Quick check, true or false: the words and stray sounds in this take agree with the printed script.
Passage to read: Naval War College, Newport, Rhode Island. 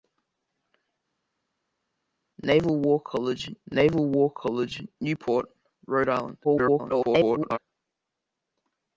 false